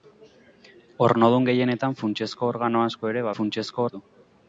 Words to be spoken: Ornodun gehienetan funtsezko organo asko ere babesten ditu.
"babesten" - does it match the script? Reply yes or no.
no